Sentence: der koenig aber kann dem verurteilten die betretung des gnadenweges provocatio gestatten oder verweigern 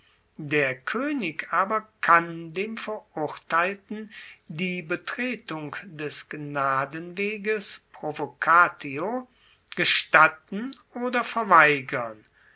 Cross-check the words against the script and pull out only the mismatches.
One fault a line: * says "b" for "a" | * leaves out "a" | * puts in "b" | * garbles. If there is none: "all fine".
all fine